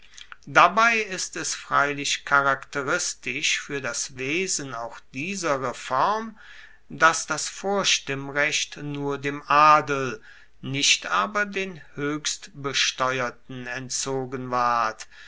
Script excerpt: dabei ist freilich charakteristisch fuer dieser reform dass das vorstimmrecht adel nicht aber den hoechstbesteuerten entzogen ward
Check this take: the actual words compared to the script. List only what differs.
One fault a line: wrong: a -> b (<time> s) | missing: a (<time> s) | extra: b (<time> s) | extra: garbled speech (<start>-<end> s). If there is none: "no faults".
extra: es (1.4 s)
extra: das wesen auch (3.8 s)
extra: nur dem (8.8 s)